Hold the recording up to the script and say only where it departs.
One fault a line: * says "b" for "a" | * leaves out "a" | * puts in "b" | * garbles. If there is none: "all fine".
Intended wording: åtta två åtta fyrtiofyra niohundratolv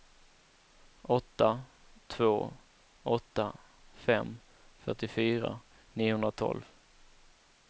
* puts in "fem"